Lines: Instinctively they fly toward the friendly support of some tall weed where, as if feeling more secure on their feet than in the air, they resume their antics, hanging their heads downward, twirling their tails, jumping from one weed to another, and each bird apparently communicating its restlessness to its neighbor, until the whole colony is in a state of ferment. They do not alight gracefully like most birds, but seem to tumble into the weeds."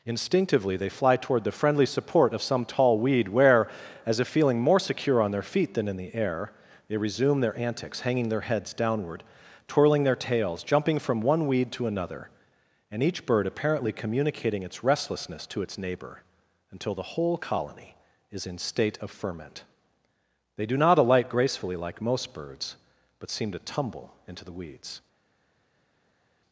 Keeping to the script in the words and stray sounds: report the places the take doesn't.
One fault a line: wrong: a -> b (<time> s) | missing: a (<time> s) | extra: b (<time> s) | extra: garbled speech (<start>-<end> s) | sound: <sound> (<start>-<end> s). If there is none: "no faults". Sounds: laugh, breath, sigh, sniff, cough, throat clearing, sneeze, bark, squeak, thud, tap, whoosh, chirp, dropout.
missing: a (18.6 s)